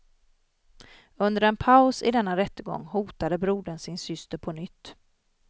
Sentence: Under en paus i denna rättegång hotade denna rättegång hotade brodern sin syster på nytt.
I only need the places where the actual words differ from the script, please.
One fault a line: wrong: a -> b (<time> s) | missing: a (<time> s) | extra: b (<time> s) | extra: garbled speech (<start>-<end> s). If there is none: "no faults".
missing: denna rättegång hotade (3.4 s)